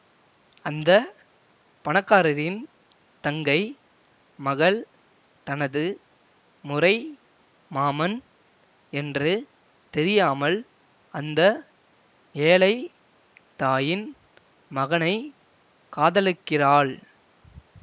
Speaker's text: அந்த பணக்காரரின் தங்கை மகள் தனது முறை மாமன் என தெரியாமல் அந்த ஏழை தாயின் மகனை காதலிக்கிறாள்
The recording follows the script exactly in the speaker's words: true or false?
false